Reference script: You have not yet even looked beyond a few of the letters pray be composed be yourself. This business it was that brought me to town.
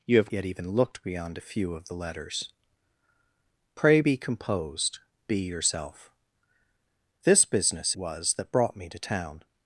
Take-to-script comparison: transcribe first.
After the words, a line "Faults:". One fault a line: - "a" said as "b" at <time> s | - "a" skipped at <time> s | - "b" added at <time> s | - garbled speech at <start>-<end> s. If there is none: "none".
You have yet even looked beyond a few of the letters pray be composed be yourself. This business was that brought me to town.
Faults:
- "not" skipped at 0.3 s
- "it" skipped at 8.0 s